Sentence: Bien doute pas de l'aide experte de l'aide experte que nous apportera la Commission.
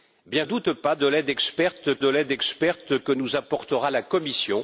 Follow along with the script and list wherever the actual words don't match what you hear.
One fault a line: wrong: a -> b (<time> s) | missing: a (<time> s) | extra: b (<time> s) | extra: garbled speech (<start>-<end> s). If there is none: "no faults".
no faults